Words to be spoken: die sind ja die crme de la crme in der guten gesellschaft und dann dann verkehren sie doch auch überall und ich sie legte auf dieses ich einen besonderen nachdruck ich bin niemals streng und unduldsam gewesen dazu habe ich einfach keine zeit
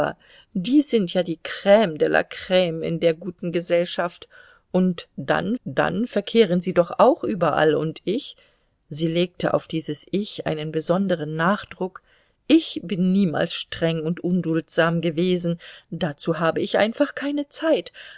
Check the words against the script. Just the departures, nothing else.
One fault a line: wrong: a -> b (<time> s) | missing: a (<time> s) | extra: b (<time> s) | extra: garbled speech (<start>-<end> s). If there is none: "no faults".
no faults